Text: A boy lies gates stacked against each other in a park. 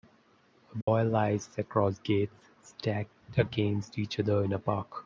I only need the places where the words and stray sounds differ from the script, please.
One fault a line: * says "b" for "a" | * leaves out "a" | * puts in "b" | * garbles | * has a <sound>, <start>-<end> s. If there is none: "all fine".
* has a dropout, 0.8-0.9 s
* puts in "across"